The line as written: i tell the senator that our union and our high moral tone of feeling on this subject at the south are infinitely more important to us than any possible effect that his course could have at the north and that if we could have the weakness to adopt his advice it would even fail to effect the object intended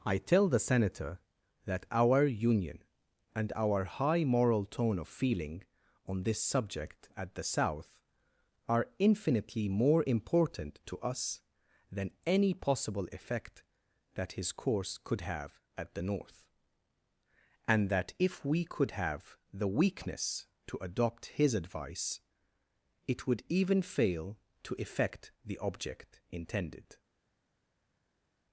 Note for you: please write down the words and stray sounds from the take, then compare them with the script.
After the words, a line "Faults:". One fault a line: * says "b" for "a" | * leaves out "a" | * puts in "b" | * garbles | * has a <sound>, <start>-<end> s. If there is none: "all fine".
i tell the senator that our union and our high moral tone of feeling on this subject at the south are infinitely more important to us than any possible effect that his course could have at the north and that if we could have the weakness to adopt his advice it would even fail to effect the object intended
Faults:
all fine